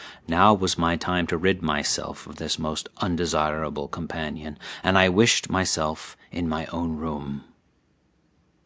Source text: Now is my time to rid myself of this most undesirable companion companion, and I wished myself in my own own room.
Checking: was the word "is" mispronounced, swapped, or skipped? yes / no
yes